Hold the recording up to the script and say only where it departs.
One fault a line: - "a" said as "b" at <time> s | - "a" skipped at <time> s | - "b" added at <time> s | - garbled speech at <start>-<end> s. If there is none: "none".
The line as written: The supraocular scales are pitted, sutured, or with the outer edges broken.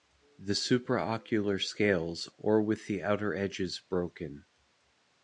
- "are pitted sutured" skipped at 2.3 s